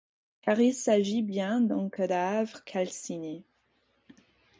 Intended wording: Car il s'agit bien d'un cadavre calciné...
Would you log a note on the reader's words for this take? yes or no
no